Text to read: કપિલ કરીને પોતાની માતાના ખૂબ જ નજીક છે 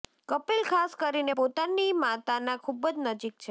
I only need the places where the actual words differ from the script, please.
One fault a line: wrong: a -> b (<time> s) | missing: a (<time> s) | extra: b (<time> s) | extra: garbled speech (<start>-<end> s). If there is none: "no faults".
extra: ખાસ (0.6 s)